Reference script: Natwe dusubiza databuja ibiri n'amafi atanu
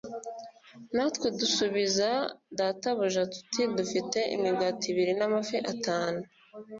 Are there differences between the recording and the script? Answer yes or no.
yes